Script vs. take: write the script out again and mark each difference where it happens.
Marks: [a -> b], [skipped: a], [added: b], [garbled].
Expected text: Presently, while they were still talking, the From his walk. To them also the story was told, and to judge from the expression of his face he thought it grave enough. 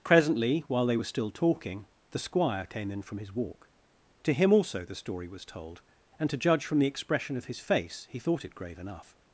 Presently, while they were still talking, the [added: Squire came in] From his walk. To [them -> him] also the story was told, and to judge from the expression of his face he thought it grave enough.